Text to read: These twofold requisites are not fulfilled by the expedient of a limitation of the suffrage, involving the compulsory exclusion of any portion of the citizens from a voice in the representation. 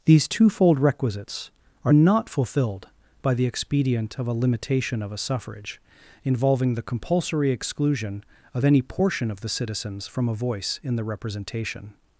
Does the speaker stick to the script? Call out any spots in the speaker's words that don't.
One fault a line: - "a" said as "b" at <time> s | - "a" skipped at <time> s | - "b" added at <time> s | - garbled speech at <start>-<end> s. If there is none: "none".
- "the" said as "a" at 5.1 s